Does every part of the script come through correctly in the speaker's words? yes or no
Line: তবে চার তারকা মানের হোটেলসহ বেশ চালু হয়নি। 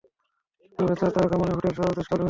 yes